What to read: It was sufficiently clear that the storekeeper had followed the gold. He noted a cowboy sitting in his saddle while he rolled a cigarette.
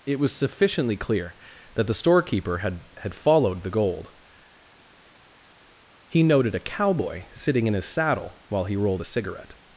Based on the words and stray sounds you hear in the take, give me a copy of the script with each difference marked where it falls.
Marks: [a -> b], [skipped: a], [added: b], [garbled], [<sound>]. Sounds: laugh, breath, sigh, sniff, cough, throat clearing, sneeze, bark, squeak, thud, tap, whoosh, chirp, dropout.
It was sufficiently clear that the storekeeper had [added: had] followed the gold. He noted a cowboy sitting in his saddle while he rolled a cigarette.